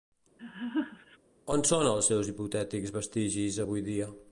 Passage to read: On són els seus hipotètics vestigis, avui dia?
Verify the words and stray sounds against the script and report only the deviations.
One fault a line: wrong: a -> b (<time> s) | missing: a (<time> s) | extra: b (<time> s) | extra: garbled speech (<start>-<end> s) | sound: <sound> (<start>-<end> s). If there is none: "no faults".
sound: laugh (0.4-1.2 s)